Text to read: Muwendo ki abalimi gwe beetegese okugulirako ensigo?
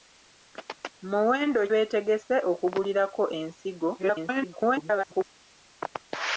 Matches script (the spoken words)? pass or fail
fail